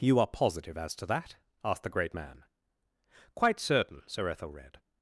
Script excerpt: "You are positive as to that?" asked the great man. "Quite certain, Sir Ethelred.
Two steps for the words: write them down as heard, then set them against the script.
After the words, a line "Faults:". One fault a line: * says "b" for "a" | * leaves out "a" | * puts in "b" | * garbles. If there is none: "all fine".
"You are positive as to that?" asked the great man. "Quite certain, Sir Ethelred.
Faults:
all fine